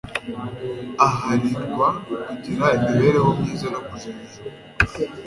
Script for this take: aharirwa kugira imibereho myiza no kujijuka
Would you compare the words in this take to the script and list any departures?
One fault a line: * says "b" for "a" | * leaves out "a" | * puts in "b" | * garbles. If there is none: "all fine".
all fine